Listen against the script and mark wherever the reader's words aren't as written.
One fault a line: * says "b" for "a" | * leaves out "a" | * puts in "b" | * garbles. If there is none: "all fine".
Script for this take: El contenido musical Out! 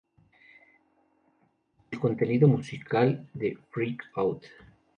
* puts in "de Freak"